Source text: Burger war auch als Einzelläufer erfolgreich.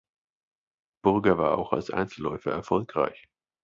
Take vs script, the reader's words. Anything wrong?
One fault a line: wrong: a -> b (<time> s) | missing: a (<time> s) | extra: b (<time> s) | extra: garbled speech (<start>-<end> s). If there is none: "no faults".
no faults